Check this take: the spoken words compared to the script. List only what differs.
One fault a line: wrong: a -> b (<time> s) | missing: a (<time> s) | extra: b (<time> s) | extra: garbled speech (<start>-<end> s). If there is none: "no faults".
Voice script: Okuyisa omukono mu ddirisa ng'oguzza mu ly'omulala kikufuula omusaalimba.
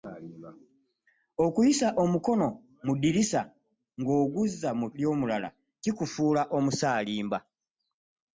no faults